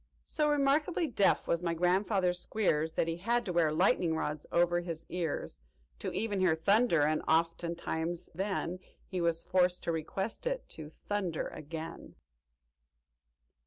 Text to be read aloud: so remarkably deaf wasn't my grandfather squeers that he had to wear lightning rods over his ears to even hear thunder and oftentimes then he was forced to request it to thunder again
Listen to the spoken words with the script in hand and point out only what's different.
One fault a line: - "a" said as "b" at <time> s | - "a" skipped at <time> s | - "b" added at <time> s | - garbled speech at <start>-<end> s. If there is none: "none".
- "wasn't" said as "was" at 1.5 s